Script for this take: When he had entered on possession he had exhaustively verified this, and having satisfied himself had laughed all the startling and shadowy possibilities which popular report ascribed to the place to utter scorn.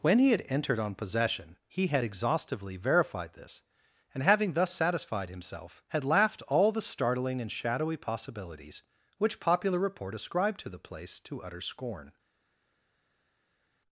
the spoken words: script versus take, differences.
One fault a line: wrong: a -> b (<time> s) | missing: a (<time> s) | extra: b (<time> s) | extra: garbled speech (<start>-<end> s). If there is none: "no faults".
extra: thus (4.5 s)